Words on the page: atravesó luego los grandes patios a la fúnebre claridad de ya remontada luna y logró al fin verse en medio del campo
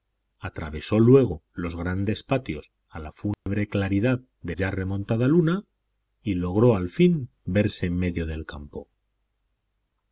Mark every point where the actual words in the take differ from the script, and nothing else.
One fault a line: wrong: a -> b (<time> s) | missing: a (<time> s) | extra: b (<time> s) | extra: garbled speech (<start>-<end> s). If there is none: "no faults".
no faults